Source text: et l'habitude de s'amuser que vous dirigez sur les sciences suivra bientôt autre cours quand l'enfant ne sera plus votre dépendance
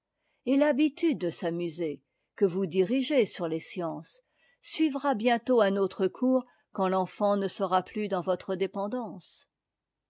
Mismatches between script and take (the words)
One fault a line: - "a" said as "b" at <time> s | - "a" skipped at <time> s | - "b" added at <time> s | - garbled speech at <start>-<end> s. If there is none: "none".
- "un" added at 5.6 s
- "dans" added at 8.1 s